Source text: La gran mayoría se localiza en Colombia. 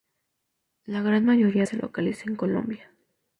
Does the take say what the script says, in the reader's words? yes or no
yes